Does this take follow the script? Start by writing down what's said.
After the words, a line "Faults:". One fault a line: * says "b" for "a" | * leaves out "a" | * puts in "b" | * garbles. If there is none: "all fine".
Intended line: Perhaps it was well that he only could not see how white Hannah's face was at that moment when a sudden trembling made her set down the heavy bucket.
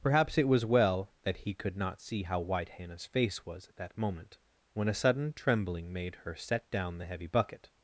Perhaps it was well that he could not see how white Hannah's face was at that moment when a sudden trembling made her set down the heavy bucket.
Faults:
* leaves out "only"